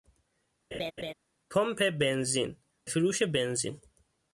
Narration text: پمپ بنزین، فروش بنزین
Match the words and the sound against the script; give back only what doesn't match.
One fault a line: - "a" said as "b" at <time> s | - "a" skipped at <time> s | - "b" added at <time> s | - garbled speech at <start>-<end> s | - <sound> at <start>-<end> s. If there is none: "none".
- laugh at 0.7-1.1 s